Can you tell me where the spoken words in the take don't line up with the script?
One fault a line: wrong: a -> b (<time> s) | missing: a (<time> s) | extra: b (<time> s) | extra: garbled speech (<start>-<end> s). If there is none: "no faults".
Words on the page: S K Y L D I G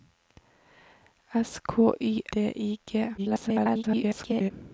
missing: L (2.2 s)
extra: garbled speech (3.2-4.5 s)